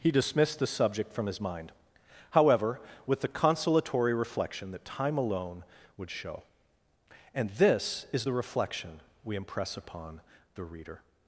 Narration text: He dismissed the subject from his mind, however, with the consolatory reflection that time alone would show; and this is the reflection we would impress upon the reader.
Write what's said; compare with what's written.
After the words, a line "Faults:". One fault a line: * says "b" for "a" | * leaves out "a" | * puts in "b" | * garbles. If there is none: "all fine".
He dismissed the subject from his mind, however, with the consolatory reflection that time alone would show; and this is the reflection we impress upon the reader.
Faults:
* leaves out "would"